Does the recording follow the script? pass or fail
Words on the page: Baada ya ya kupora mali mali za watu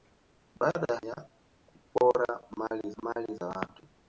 pass